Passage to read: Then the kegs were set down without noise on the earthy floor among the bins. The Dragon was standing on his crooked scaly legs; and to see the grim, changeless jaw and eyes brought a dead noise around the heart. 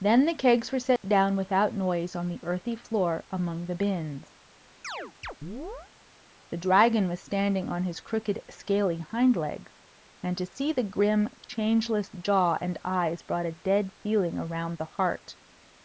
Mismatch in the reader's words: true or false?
true